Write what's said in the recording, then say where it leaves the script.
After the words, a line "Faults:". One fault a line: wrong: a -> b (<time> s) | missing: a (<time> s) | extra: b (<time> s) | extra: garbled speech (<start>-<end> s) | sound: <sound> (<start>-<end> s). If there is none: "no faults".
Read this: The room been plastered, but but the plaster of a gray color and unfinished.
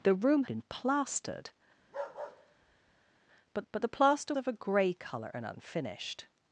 The room been plastered, but but the plaster of a gray color and unfinished.
Faults:
sound: bark (1.8-3.2 s)